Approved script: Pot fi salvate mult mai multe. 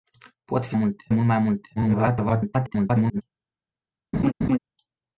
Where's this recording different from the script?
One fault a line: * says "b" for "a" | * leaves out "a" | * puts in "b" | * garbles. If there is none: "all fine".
* says "multe" for "salvate"
* garbles